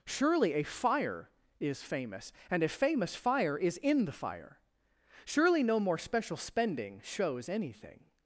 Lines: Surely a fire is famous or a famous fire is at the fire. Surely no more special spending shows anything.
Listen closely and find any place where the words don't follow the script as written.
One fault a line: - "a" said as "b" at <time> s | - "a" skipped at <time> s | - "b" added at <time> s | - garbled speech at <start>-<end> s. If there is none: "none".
- "or" said as "and" at 2.5 s
- "at" said as "in" at 3.8 s